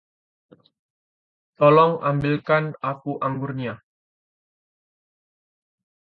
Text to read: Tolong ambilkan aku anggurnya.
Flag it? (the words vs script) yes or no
no